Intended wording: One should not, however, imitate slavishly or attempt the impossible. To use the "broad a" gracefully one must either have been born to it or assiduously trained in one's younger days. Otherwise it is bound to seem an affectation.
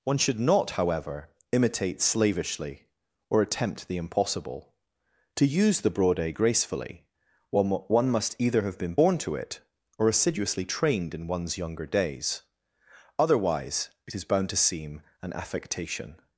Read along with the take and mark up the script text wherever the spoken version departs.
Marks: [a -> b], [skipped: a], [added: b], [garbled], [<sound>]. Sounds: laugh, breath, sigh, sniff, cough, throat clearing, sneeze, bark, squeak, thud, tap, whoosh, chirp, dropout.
One should not, however, imitate slavishly or attempt the impossible. To use the "broad a" gracefully one must either have been born to it or assiduously trained in one's younger days. Otherwise it is bound to seem an affectation.